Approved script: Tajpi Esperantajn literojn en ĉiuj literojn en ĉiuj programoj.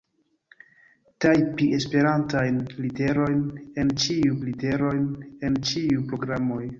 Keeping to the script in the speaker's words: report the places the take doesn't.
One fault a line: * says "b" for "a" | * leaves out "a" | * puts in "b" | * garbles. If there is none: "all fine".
all fine